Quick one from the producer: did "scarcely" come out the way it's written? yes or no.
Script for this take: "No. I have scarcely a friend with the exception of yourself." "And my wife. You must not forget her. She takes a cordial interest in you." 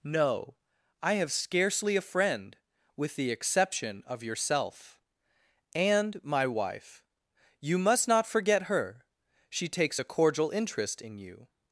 yes